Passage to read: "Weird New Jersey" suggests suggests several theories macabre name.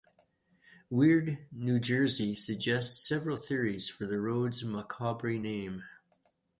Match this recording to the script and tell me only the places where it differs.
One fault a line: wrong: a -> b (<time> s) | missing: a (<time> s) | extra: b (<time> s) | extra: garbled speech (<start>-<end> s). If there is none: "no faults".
missing: suggests (3.0 s)
extra: for the road's (3.9 s)